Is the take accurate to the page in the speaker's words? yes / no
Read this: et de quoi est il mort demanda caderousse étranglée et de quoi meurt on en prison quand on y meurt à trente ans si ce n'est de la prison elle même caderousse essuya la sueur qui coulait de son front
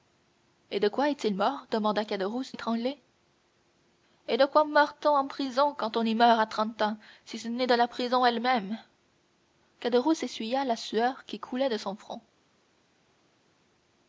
yes